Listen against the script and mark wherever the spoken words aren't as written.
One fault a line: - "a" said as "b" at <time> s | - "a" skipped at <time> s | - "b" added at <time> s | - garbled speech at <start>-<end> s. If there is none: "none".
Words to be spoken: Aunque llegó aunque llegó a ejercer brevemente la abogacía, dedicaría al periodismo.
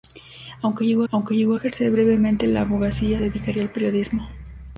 none